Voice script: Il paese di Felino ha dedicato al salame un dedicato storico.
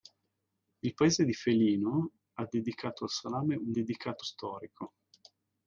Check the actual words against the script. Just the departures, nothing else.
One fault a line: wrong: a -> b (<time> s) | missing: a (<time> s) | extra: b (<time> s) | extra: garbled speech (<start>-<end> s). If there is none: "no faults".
no faults